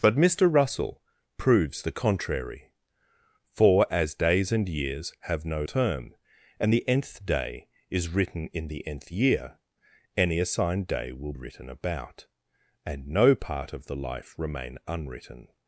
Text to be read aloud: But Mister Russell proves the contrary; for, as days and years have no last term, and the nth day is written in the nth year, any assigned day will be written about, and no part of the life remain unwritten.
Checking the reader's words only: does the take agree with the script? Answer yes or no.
no